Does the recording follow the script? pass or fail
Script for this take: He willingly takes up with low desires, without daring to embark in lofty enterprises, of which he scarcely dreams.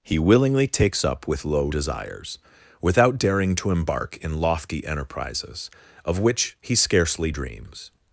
pass